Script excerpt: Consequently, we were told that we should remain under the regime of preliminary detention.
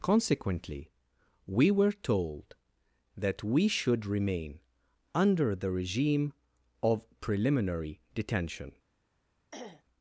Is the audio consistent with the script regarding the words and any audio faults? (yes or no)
no